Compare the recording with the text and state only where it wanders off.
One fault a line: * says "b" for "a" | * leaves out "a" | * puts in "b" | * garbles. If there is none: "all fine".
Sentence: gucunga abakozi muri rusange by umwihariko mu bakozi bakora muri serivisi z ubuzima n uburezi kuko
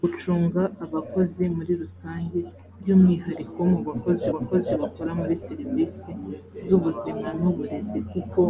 * puts in "bakozi"